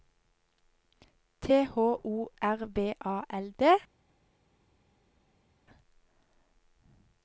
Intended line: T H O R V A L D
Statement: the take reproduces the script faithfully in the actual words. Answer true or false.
true